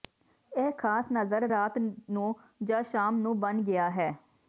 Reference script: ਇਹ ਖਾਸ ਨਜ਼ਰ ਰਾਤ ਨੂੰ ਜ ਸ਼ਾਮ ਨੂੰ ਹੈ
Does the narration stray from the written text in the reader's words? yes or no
yes